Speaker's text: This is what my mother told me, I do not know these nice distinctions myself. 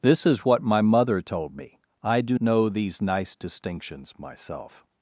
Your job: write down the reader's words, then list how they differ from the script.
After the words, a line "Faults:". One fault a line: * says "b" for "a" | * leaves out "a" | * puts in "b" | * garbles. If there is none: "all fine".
This is what my mother told me, I do know these nice distinctions myself.
Faults:
* leaves out "not"